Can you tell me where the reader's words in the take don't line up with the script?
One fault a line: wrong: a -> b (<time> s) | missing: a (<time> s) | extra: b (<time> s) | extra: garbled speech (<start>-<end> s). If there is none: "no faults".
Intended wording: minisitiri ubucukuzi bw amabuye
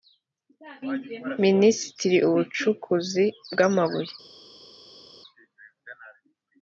no faults